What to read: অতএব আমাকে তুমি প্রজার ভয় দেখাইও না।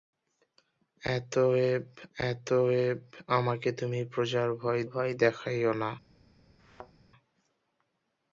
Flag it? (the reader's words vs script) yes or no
yes